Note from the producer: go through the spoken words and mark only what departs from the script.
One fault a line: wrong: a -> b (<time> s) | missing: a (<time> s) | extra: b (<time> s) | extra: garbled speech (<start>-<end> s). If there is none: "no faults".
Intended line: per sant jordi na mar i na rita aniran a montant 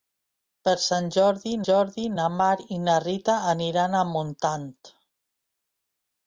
extra: jordi (1.7 s)